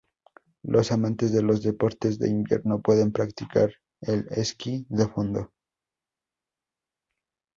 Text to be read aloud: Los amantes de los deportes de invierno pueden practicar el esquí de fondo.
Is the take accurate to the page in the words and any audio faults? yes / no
yes